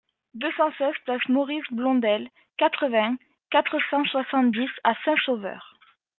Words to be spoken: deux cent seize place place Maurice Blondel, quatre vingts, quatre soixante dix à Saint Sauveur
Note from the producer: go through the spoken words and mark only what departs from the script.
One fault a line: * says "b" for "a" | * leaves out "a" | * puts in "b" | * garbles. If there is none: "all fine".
* leaves out "place"
* puts in "cent"